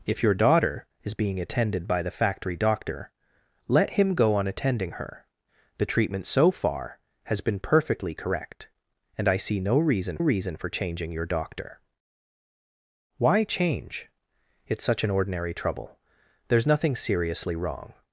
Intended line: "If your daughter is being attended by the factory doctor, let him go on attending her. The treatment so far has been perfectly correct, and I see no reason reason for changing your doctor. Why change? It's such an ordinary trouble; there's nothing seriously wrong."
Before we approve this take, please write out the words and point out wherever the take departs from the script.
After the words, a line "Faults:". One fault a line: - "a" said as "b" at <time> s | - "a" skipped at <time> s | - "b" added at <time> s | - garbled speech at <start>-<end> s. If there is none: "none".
"If your daughter is being attended by the factory doctor, let him go on attending her. The treatment so far has been perfectly correct, and I see no reason reason for changing your doctor. Why change? It's such an ordinary trouble; there's nothing seriously wrong."
Faults:
none